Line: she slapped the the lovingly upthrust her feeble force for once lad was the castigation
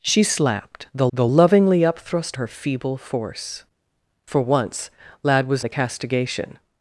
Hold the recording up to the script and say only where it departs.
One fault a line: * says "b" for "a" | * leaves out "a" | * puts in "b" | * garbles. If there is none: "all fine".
all fine